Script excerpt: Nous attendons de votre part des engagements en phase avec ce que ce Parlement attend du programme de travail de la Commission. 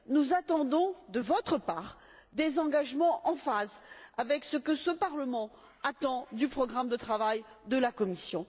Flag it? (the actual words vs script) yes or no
no